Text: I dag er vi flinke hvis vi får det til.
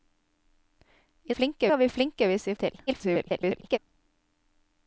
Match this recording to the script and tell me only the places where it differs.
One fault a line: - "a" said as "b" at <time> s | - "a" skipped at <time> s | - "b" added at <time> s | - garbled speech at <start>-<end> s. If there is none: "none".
- "dag" said as "flinke" at 1.3 s
- "får" skipped at 2.6 s
- garbled speech at 2.9-3.8 s